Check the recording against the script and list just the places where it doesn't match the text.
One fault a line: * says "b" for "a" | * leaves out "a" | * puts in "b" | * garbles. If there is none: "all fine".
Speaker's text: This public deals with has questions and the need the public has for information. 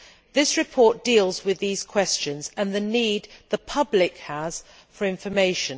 * says "report" for "public"
* says "these" for "has"